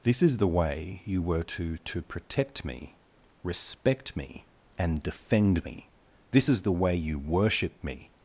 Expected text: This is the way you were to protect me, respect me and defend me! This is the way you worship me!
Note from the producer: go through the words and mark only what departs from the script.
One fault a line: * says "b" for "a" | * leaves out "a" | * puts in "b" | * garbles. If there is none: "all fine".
* puts in "to"